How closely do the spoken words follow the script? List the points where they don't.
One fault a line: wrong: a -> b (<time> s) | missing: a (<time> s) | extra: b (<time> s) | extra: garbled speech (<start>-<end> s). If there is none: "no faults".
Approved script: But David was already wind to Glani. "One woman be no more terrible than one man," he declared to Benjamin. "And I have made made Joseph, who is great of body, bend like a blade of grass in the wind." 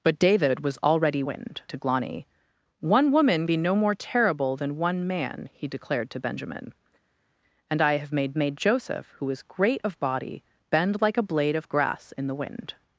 no faults